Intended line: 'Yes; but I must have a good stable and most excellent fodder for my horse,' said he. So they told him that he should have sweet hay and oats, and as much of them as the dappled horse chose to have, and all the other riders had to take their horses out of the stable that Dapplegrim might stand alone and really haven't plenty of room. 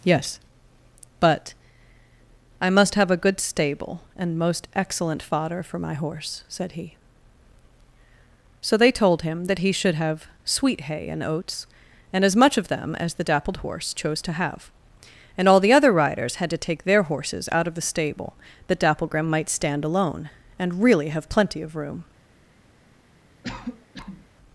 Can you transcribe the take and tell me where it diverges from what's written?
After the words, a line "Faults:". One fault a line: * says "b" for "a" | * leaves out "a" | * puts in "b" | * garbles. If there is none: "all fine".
'Yes; but I must have a good stable and most excellent fodder for my horse,' said he. So they told him that he should have sweet hay and oats, and as much of them as the dappled horse chose to have, and all the other riders had to take their horses out of the stable that Dapplegrim might stand alone and really have plenty of room.
Faults:
* says "have" for "haven't"